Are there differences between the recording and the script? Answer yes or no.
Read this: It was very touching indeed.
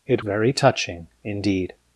yes